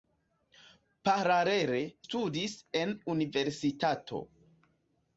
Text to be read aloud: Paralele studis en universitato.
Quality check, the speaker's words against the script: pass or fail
pass